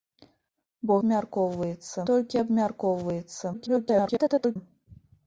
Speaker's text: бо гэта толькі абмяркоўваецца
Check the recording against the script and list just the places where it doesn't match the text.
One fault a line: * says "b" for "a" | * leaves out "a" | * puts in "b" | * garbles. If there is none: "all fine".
* says "абмяркоўваецца" for "гэта"
* garbles